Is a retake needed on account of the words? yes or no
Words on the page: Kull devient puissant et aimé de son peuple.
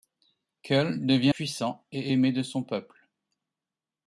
no